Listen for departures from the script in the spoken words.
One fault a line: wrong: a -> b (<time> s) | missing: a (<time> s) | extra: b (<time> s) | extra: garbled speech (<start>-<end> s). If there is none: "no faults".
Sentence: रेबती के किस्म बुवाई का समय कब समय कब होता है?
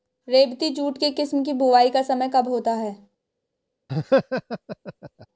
extra: जूट (0.7 s)
extra: की (1.4 s)
missing: समय कब (2.5 s)